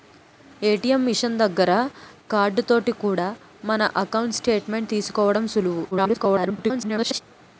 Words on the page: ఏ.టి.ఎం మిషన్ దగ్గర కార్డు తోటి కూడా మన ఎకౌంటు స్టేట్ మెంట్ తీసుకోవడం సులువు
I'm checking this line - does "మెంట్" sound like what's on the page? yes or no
yes